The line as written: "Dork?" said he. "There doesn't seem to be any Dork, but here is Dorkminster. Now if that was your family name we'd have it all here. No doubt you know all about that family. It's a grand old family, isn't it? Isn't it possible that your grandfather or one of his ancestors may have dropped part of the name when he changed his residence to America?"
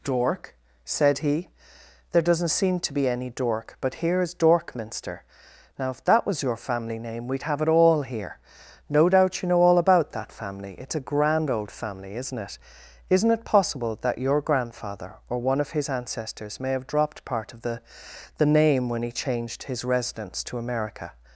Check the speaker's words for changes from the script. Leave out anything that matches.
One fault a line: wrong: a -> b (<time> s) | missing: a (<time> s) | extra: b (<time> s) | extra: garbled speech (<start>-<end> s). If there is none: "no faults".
extra: the (18.4 s)